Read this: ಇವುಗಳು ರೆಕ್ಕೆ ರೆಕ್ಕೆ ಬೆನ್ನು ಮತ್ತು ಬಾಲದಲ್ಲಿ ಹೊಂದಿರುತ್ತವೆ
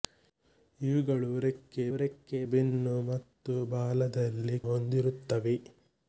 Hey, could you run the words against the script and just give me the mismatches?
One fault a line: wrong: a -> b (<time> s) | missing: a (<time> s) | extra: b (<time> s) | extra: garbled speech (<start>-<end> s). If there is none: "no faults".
no faults